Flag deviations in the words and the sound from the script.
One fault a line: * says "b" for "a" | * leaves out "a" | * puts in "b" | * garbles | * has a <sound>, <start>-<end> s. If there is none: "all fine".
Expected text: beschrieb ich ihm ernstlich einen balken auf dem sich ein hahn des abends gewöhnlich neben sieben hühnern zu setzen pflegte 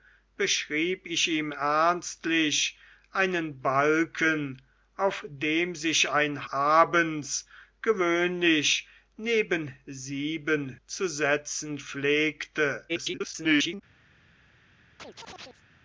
* leaves out "hahn des"
* leaves out "hühnern"
* garbles
* has a chirp, 15.0-15.6 s